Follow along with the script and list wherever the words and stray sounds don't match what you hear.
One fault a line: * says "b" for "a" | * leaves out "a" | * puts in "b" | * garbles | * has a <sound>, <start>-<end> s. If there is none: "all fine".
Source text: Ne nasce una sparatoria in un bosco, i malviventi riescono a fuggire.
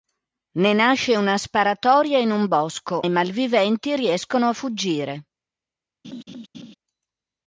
* has a laugh, 6.0-6.7 s